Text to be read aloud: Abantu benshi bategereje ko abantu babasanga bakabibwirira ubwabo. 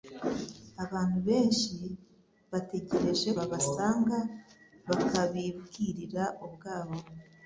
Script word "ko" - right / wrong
wrong